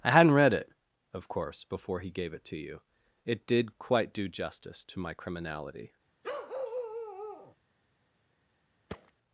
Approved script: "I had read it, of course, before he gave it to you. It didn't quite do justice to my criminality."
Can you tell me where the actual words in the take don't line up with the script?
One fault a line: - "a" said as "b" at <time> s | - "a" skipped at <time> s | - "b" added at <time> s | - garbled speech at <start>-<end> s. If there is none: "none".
- "had" said as "hadn't" at 0.1 s
- "didn't" said as "did" at 3.5 s